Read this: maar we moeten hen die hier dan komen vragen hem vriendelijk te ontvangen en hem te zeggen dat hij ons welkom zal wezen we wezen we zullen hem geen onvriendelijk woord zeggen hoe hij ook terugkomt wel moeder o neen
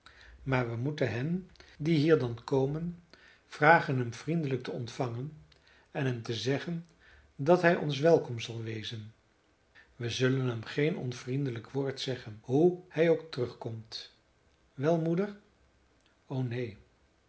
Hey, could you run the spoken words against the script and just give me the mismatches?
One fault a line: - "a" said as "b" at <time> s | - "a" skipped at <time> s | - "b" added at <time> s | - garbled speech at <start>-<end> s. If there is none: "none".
- "wezen we" skipped at 10.1 s